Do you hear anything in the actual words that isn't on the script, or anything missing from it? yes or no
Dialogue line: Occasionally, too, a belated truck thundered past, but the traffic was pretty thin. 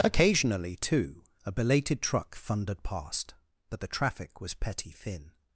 yes